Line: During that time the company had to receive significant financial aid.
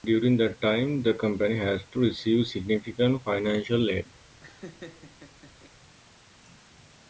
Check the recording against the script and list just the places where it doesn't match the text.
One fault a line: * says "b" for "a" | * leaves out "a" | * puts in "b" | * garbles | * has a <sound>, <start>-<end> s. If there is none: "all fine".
* has a laugh, 4.3-5.7 s